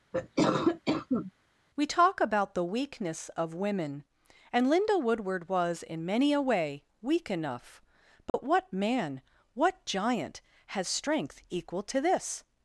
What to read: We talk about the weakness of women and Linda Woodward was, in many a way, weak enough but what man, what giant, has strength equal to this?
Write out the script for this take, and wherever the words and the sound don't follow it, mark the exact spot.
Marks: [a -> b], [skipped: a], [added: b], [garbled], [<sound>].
[cough] We talk about the weakness of women and Linda Woodward was, in many a way, weak enough but [dropout] what man, what giant, has strength equal to this?